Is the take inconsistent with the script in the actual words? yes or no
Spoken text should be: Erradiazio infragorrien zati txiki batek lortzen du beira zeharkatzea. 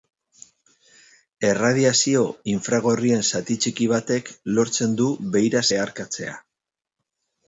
no